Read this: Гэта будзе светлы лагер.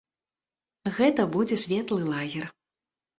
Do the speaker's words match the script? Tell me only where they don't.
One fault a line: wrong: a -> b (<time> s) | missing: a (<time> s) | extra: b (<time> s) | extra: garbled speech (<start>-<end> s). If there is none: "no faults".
no faults